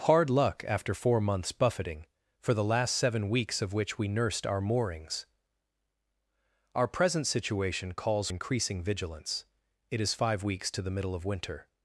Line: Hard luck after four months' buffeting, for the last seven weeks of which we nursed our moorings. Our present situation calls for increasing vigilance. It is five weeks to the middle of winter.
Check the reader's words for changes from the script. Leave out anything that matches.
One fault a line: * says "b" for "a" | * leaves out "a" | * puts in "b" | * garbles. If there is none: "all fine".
* leaves out "for"